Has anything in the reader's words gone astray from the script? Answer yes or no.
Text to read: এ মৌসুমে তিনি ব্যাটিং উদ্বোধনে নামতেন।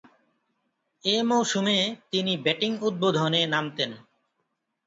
no